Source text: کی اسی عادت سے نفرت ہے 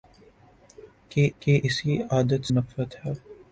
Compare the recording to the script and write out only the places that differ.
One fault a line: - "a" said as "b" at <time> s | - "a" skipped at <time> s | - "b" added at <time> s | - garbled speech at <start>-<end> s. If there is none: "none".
- "کی" added at 1.4 s
- "سے" skipped at 2.4 s